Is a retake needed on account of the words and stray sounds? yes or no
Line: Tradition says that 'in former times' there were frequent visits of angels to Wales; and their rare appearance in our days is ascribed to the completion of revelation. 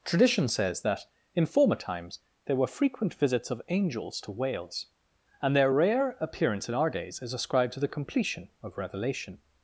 no